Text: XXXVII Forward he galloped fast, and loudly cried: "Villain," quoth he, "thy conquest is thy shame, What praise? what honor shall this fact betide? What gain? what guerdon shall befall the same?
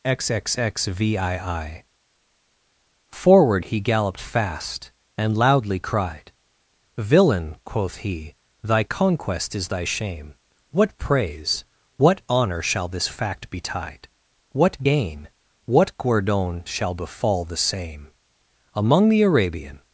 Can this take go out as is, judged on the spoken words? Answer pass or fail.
fail